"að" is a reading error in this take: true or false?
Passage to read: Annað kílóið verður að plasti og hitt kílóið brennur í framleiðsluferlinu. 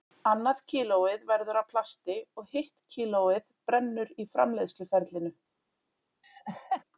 false